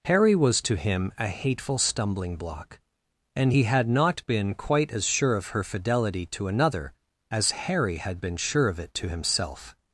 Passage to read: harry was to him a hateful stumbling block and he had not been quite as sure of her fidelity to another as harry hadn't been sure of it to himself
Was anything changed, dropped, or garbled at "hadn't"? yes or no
yes